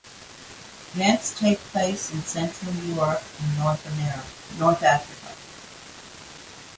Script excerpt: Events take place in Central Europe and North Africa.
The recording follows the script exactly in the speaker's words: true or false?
false